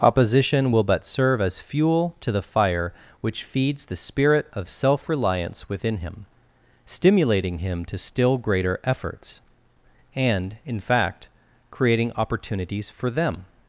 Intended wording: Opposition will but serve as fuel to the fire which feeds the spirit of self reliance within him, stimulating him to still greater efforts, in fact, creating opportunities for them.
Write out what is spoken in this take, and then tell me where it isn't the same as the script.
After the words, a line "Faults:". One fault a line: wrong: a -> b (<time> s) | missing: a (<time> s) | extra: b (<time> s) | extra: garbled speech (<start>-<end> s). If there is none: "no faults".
Opposition will but serve as fuel to the fire which feeds the spirit of self reliance within him, stimulating him to still greater efforts, and, in fact, creating opportunities for them.
Faults:
extra: and (10.2 s)